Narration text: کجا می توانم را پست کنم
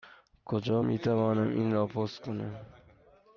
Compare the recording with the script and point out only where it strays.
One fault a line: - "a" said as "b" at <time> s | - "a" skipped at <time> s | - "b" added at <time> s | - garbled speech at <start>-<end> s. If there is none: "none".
- "این" added at 1.5 s